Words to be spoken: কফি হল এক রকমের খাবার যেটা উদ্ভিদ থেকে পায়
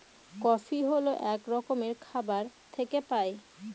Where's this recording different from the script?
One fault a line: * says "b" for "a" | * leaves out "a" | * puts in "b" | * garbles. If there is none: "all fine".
* leaves out "যেটা উদ্ভিদ"